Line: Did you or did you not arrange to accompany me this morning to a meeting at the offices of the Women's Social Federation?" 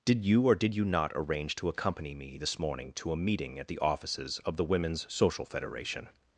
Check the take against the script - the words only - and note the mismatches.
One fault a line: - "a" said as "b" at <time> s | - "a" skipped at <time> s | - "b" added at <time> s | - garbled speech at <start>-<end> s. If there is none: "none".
none